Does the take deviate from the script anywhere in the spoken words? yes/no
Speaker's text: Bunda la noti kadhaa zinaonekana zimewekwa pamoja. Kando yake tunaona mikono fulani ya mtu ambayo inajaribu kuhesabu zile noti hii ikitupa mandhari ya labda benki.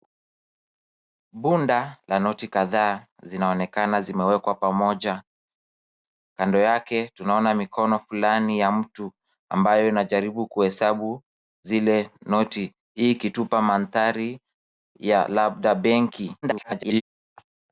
yes